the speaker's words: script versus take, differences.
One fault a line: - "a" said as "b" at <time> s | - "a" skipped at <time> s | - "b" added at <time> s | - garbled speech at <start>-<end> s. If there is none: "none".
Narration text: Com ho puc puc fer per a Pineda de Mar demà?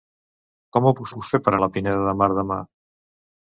none